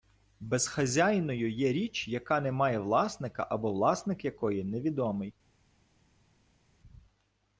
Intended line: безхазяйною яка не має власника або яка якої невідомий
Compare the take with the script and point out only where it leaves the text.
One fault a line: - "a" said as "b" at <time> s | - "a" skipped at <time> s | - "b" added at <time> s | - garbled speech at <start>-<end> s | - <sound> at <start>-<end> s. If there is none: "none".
- "є річ" added at 1.5 s
- "яка" said as "власник" at 3.7 s